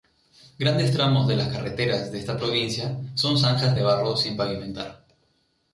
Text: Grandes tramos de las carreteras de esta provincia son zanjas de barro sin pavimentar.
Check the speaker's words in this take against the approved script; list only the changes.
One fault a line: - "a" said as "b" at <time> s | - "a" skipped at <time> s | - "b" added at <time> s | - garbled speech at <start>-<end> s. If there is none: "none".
none